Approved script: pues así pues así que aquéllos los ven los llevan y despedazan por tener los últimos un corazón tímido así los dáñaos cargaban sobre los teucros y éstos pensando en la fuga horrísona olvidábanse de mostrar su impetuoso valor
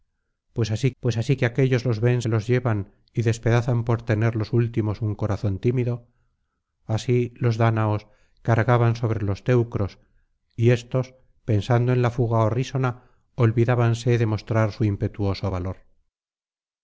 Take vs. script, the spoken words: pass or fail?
pass